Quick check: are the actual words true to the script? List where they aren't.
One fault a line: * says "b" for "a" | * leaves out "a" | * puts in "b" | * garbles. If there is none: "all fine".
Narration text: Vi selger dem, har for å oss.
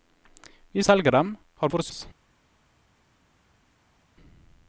all fine